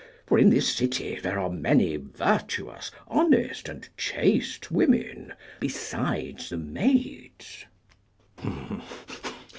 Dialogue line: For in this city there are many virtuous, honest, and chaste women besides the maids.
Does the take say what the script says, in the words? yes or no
yes